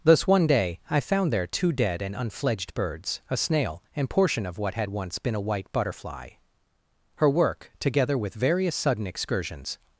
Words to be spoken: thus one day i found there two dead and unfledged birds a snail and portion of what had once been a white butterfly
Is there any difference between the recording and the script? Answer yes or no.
yes